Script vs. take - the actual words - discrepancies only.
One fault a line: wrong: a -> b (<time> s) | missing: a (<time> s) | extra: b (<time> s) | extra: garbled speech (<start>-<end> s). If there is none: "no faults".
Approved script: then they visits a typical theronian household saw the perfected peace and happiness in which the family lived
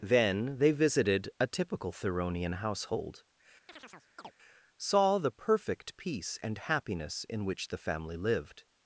wrong: visits -> visited (0.7 s)
wrong: perfected -> perfect (5.3 s)